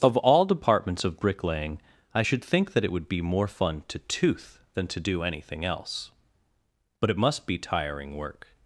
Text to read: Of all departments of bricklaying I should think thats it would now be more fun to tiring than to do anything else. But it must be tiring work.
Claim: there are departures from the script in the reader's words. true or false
true